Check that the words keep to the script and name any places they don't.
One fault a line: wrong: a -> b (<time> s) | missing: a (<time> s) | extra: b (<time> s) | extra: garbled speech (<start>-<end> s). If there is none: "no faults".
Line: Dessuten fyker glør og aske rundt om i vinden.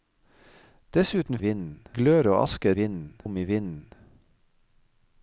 wrong: fyker -> vinden (1.4 s)
wrong: rundt -> vinden (2.8 s)